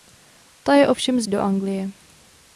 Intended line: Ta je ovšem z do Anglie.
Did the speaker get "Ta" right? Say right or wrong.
right